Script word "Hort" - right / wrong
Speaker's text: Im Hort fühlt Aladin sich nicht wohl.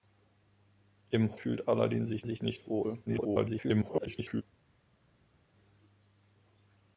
wrong